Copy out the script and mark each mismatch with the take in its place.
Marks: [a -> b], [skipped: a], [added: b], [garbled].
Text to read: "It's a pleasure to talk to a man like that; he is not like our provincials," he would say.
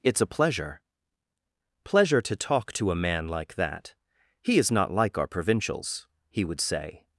"It's a pleasure [added: pleasure] to talk to a man like that; he is not like our provincials," he would say.